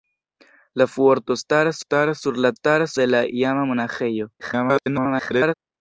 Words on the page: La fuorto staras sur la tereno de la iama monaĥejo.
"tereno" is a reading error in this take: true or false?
true